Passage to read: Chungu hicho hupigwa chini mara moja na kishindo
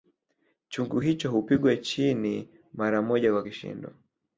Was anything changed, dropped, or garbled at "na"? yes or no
yes